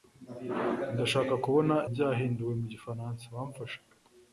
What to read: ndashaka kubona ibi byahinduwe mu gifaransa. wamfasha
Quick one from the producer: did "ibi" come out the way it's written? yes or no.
no